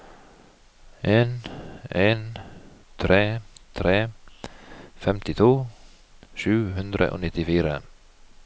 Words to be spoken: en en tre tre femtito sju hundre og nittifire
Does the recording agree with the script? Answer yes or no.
yes